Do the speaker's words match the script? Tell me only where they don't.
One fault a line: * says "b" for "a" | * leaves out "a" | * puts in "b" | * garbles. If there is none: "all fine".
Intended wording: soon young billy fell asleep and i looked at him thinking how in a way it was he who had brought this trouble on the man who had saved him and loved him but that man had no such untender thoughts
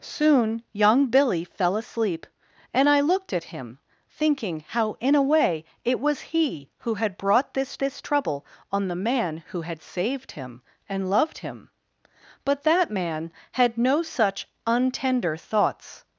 * puts in "this"